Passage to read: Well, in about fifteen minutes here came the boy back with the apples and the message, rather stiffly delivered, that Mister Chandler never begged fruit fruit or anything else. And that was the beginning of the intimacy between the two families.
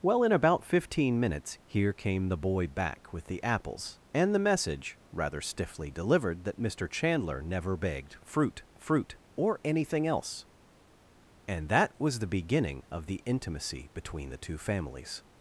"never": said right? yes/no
yes